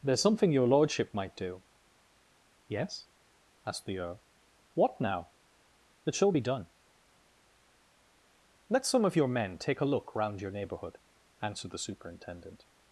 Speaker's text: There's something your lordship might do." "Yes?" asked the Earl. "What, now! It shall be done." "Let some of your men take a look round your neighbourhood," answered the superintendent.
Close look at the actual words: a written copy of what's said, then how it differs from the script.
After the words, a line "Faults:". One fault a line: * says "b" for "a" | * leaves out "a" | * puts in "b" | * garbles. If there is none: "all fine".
There's something your lordship might do." "Yes?" asked the Earl. "What, now! It shall be done." "Let some of your men take a look round your neighbourhood," answered the superintendent.
Faults:
all fine